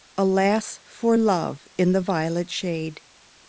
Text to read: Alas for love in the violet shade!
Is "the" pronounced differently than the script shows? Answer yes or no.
no